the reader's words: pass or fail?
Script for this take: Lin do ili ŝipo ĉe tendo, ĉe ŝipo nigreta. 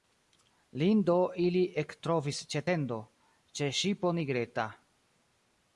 fail